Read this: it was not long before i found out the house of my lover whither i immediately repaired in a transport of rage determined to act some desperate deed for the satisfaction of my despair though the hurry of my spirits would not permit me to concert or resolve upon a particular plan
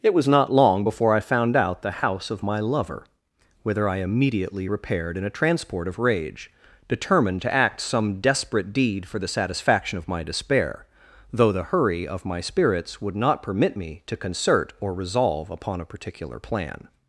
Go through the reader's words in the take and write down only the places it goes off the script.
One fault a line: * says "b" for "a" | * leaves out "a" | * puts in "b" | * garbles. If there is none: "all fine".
all fine